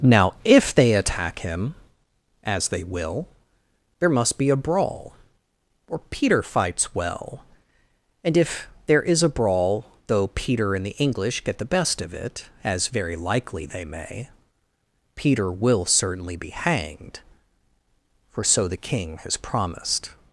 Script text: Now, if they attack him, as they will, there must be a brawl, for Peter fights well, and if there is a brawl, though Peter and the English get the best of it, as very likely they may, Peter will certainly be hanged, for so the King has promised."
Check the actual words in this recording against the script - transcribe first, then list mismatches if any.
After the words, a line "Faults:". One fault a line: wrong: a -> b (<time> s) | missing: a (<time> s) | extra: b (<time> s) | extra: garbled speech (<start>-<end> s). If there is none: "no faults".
Now, if they attack him, as they will, there must be a brawl, or Peter fights well, and if there is a brawl, though Peter and the English get the best of it, as very likely they may, Peter will certainly be hanged, for so the King has promised."
Faults:
wrong: for -> or (5.9 s)